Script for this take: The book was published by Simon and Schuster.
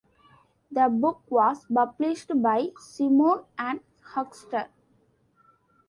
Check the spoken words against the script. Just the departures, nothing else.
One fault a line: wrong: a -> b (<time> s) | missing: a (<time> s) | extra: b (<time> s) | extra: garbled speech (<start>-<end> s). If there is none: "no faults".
no faults